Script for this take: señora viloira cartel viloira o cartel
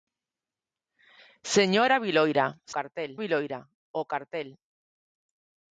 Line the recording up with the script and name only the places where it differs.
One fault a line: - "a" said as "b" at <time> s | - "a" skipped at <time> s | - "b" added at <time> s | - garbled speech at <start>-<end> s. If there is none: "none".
none